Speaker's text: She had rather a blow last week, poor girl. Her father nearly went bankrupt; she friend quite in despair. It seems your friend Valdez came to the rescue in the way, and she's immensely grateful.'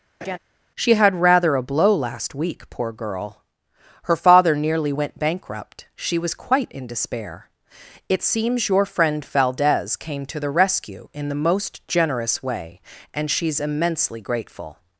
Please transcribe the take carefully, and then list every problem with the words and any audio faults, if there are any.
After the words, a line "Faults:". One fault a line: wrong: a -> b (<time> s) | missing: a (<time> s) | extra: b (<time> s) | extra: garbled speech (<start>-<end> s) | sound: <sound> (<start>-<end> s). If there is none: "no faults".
She had rather a blow last week, poor girl. Her father nearly went bankrupt; she was quite in despair. It seems your friend Valdez came to the rescue in the most generous way, and she's immensely grateful.'
Faults:
sound: laugh (0.2-0.4 s)
wrong: friend -> was (6.2 s)
extra: most generous (11.3 s)